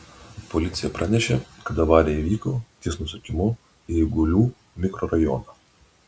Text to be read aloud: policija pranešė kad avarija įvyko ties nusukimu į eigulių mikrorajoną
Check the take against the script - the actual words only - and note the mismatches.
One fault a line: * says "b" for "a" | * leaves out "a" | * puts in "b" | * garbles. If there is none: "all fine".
all fine